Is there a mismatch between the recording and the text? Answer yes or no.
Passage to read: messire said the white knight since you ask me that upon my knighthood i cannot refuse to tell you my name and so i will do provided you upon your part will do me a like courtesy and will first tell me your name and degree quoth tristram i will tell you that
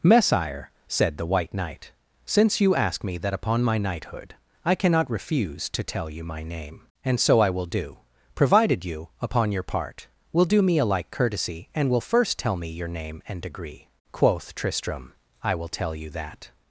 no